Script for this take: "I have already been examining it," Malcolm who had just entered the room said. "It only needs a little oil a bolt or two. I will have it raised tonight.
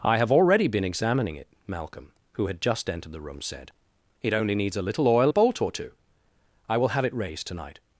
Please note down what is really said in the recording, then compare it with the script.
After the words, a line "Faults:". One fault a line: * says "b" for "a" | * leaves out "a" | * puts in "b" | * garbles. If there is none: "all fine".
"I have already been examining it," Malcolm who had just entered the room said. "It only needs a little oil a bolt or two. I will have it raised tonight.
Faults:
all fine